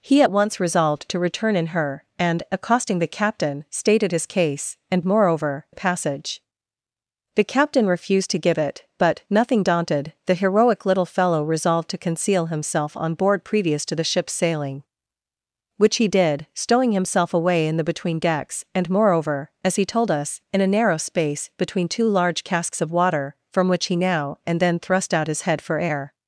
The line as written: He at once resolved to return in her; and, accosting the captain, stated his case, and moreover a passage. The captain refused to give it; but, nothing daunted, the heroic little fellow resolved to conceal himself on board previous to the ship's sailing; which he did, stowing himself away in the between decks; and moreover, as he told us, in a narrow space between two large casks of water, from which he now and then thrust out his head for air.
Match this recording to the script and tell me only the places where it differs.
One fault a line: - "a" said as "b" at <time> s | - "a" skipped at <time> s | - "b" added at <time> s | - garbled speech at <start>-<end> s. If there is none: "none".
none